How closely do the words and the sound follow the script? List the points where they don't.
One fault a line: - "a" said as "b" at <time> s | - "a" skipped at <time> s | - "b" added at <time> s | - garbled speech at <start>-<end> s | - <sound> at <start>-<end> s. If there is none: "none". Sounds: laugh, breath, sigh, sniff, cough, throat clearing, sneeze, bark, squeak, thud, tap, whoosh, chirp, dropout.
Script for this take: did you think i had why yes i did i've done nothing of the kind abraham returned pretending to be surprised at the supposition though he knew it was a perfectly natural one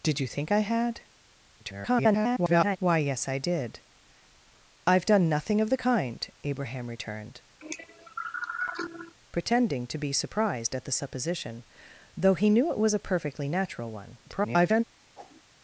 - garbled speech at 1.6-2.8 s
- cough at 7.6-9.1 s
- garbled speech at 14.2-14.8 s
- whoosh at 15.1-15.4 s